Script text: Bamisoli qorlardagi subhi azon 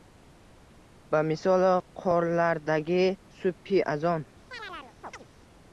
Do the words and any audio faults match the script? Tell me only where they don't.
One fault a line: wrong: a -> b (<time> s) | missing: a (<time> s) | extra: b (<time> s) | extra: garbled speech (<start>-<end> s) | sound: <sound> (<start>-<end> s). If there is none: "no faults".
sound: chirp (4.5-5.2 s)